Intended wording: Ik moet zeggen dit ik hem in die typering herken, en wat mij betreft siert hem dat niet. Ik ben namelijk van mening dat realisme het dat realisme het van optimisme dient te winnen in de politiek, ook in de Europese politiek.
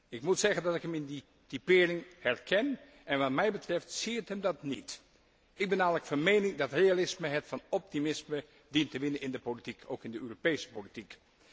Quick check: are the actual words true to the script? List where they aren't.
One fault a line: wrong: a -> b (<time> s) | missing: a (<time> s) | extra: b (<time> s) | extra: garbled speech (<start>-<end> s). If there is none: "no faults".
wrong: dit -> dat (0.6 s)
missing: dat realisme het (7.5 s)